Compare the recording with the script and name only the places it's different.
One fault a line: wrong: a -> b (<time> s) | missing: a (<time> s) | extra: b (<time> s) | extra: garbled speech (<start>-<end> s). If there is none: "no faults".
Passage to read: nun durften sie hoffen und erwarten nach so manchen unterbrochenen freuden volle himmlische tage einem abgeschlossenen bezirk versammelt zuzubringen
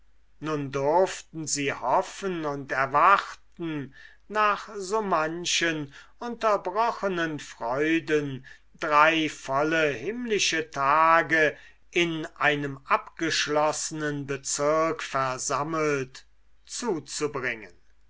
extra: drei (8.8 s)
extra: in (11.9 s)